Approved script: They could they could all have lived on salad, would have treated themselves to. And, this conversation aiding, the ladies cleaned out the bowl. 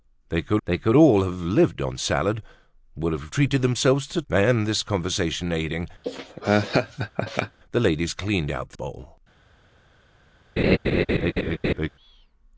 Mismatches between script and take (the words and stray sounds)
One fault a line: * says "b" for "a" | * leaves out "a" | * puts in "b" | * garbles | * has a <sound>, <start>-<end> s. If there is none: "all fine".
* has a laugh, 6.0-7.6 s
* has a laugh, 10.6-11.9 s